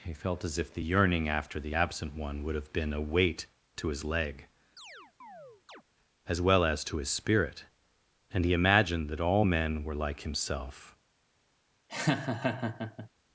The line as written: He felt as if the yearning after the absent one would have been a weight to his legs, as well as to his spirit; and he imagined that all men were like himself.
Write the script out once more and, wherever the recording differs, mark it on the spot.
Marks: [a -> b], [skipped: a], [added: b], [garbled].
He felt as if the yearning after the absent one would have been a weight to his [legs, -> leg] as well as to his spirit; and he imagined that all men were like himself.